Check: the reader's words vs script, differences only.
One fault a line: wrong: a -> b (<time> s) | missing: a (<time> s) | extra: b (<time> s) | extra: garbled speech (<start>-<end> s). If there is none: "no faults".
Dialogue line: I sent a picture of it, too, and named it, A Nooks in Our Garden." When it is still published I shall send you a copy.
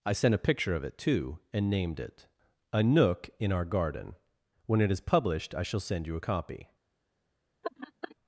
wrong: Nooks -> Nook (2.8 s)
missing: still (5.0 s)